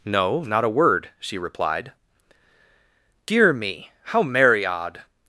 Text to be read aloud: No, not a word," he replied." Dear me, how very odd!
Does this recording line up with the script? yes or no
no